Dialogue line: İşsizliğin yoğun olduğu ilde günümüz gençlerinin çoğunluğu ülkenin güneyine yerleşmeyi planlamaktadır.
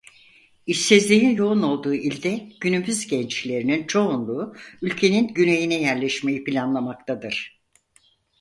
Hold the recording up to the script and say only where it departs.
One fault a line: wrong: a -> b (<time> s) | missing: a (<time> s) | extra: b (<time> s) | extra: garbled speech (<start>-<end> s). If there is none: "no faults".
no faults